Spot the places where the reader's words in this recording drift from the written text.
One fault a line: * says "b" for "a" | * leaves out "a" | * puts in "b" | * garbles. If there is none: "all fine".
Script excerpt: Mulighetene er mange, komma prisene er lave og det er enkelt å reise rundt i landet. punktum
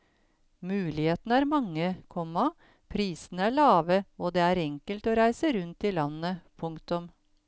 all fine